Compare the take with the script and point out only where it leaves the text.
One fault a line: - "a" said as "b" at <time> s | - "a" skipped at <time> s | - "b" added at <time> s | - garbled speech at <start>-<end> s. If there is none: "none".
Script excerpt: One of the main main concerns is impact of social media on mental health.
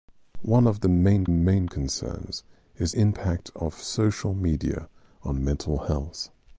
none